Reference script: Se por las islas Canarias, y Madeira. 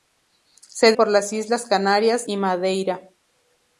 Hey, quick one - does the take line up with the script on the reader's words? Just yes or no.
yes